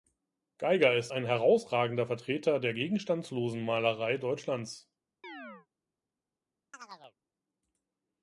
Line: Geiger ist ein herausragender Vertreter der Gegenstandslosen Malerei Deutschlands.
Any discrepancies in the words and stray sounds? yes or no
yes